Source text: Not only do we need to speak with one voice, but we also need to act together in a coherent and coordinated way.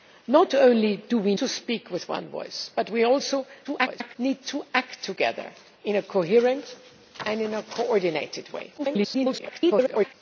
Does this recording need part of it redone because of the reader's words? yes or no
yes